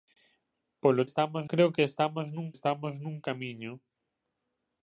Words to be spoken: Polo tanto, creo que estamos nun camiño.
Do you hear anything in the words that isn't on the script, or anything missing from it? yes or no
yes